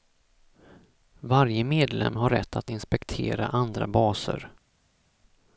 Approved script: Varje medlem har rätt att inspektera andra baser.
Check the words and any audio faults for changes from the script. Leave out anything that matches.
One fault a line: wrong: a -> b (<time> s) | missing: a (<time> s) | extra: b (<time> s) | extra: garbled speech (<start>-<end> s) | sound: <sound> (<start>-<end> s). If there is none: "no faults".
no faults